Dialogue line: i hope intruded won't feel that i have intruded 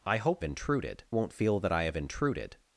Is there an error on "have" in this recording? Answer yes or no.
no